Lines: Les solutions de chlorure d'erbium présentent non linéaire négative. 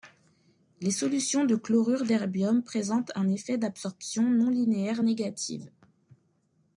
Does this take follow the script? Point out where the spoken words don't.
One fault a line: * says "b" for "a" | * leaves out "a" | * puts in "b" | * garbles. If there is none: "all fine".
* puts in "un effet d'absorption"